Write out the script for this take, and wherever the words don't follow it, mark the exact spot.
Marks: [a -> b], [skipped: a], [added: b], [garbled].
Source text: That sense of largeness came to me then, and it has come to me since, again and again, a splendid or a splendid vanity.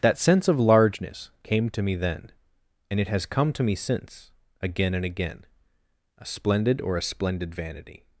That sense of largeness came to me then, and it has come to me since, again and again, a splendid or a splendid vanity.